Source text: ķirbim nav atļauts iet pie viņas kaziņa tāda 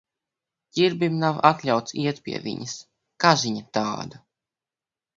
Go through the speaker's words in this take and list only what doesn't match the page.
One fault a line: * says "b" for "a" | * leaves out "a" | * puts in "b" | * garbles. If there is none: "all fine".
all fine